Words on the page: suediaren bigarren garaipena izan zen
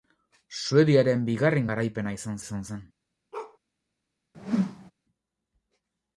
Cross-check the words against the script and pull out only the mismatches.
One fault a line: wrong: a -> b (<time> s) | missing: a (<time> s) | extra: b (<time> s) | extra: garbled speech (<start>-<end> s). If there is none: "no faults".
extra: izan (2.4 s)